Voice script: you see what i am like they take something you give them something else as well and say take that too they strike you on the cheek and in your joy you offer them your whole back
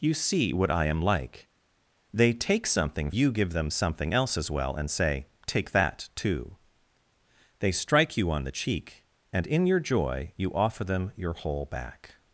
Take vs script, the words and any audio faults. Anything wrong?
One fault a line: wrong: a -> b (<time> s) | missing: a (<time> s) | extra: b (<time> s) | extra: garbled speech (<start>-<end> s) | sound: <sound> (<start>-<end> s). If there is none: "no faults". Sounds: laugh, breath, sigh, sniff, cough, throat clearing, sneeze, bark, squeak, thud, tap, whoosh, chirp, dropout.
no faults